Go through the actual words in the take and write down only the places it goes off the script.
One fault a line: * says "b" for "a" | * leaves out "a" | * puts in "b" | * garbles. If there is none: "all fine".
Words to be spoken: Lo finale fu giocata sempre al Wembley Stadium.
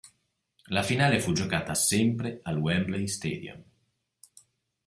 * says "La" for "Lo"